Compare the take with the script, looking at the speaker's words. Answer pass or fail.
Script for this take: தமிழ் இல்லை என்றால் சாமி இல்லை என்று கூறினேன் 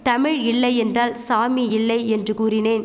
pass